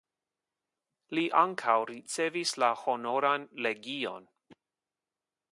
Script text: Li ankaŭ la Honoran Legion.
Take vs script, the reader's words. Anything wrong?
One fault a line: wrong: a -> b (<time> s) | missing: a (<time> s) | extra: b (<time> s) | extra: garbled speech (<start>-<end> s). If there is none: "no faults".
extra: ricevis (1.9 s)